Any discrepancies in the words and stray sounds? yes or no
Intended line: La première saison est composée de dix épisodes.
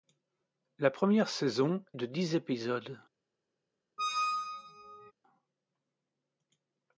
yes